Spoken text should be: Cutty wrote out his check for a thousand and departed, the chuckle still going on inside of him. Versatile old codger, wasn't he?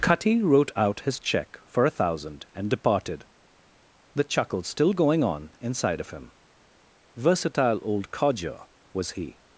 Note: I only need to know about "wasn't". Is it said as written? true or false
false